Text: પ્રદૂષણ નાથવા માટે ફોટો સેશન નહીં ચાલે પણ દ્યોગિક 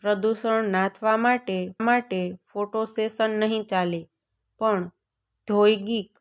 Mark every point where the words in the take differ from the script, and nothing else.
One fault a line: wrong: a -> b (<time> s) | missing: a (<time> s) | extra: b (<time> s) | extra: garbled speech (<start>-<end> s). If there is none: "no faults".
extra: માટે (1.8 s)